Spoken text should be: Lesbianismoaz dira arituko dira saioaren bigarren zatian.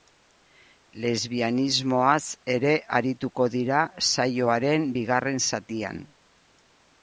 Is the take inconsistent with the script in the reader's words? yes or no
yes